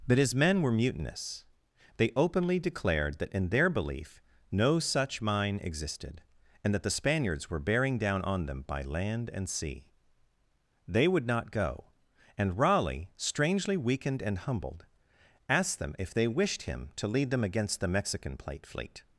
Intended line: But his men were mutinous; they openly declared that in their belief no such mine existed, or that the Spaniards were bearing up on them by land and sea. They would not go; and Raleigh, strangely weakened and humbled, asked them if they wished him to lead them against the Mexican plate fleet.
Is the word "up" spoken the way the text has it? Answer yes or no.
no